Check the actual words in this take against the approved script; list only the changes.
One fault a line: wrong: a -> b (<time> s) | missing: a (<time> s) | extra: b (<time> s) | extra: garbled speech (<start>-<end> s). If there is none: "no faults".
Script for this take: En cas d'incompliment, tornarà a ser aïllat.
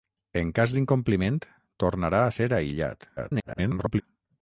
extra: garbled speech (3.2-4.0 s)